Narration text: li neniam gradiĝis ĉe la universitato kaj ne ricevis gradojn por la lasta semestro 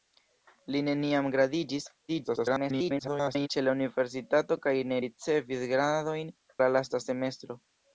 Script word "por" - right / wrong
wrong